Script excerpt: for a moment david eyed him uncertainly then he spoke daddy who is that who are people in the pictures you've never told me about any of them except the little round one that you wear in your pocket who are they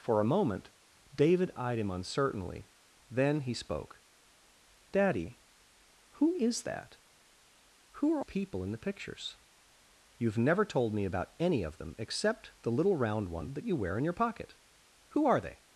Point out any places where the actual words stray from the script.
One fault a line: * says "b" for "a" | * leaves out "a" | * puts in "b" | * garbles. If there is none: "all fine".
all fine